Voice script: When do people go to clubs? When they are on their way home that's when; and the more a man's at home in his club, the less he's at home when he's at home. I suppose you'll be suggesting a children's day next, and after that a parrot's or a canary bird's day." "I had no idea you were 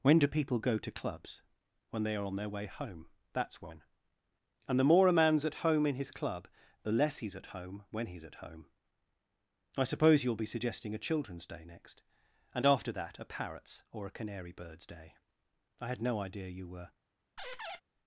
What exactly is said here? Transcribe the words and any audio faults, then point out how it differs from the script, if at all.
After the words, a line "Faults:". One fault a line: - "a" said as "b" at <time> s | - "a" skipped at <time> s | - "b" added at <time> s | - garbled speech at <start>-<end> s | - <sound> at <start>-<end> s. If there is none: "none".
When do people go to clubs? When they are on their way home that's when; and the more a man's at home in his club, the less he's at home when he's at home. I suppose you'll be suggesting a children's day next, and after that a parrot's or a canary bird's day." "I had no idea you were
Faults:
- squeak at 17.4-17.8 s